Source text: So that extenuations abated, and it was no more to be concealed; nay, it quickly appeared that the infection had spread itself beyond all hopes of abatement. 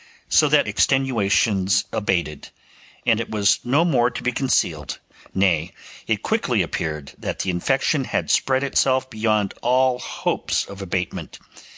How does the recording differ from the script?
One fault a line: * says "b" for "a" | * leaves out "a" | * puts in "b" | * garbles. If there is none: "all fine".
all fine